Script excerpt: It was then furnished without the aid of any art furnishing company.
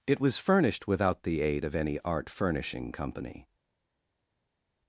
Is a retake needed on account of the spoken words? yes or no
yes